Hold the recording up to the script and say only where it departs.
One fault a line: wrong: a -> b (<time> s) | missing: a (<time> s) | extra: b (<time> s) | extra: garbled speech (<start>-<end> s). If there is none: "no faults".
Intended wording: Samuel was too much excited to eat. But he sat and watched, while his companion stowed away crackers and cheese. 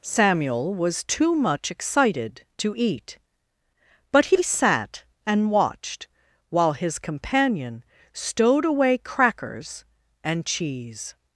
no faults